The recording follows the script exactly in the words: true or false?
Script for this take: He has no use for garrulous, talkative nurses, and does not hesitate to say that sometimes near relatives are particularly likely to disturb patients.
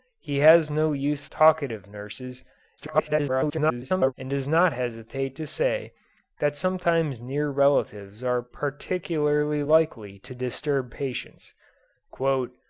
false